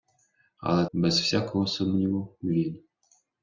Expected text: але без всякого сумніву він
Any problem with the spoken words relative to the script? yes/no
no